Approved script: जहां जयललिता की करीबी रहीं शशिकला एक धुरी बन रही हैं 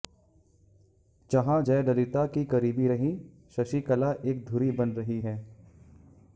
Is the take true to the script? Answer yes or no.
yes